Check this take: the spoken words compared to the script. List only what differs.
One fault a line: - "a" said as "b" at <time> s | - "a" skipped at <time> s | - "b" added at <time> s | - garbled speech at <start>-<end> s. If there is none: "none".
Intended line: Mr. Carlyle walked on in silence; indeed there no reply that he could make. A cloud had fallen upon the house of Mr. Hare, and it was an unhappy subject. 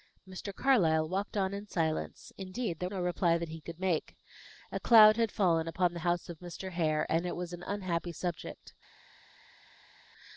none